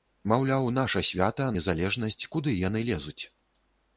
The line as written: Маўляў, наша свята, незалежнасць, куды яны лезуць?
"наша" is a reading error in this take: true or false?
false